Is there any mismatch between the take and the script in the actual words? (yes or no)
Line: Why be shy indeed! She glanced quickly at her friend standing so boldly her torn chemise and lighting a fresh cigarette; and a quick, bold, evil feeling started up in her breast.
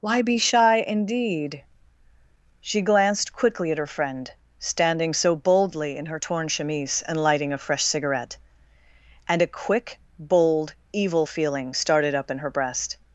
yes